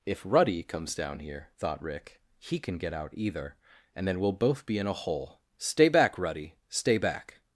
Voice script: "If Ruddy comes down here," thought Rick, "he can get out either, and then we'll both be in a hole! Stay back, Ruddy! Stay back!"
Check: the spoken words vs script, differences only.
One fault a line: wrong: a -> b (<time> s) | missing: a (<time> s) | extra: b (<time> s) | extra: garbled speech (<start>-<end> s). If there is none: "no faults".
no faults